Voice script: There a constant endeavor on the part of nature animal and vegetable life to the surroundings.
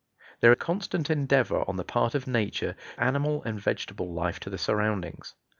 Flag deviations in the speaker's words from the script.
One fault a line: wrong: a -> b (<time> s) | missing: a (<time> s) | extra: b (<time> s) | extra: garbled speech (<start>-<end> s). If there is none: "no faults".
no faults